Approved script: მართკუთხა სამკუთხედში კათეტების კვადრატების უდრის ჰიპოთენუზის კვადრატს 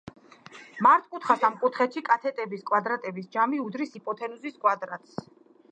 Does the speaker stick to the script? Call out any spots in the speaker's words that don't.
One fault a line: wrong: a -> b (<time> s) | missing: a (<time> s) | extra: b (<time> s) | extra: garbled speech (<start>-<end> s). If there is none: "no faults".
extra: ჯამი (3.4 s)